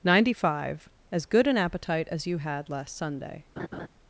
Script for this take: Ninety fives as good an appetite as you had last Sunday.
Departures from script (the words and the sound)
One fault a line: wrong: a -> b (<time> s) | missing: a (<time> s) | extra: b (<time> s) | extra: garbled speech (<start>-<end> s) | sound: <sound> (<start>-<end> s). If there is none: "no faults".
wrong: fives -> five (0.5 s)
sound: laugh (3.6-3.9 s)